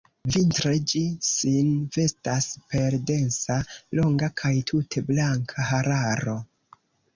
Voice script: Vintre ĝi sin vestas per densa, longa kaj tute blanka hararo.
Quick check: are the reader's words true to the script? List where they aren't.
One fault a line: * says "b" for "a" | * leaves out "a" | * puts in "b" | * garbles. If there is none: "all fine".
all fine